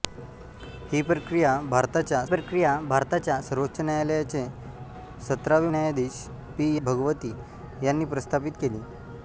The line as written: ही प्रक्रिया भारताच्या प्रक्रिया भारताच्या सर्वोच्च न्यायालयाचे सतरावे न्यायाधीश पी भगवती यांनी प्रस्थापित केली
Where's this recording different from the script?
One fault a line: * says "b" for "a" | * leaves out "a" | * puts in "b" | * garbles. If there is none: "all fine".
all fine